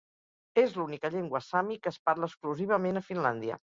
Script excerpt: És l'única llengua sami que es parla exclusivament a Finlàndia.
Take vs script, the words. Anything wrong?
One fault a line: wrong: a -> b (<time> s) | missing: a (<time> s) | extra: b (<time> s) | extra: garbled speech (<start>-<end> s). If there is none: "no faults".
no faults